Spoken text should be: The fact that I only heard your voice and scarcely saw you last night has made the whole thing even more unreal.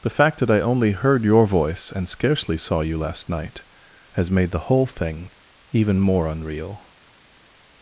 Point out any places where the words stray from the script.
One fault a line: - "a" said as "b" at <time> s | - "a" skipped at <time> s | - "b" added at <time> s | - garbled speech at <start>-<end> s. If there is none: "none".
none